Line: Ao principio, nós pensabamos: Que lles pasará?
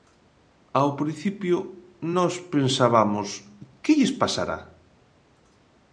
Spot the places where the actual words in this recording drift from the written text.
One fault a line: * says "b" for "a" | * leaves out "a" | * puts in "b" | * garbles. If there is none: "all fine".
all fine